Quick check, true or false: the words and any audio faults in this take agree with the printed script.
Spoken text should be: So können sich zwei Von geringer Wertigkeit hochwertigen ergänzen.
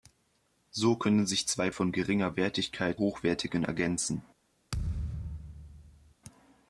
false